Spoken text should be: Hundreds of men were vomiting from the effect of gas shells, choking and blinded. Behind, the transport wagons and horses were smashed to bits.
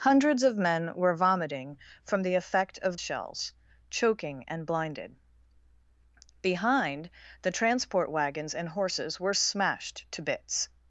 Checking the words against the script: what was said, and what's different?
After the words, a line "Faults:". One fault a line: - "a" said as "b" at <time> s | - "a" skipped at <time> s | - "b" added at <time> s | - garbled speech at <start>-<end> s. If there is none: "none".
Hundreds of men were vomiting from the effect of shells, choking and blinded. Behind, the transport wagons and horses were smashed to bits.
Faults:
- "gas" skipped at 3.0 s